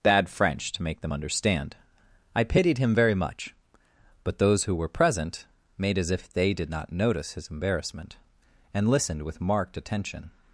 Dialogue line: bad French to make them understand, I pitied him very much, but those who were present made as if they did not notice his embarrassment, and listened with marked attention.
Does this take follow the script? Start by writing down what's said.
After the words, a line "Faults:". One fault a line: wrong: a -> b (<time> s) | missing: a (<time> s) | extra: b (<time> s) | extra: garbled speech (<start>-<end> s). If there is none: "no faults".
bad French to make them understand, I pitied him very much, but those who were present made as if they did not notice his embarrassment, and listened with marked attention.
Faults:
no faults